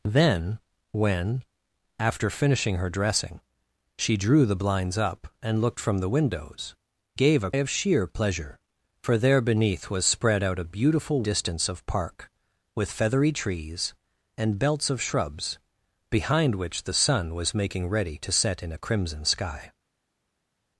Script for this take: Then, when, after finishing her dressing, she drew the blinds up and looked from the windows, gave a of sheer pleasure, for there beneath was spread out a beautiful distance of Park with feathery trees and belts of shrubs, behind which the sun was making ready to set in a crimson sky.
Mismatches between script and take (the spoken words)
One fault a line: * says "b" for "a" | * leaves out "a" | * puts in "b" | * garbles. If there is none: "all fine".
all fine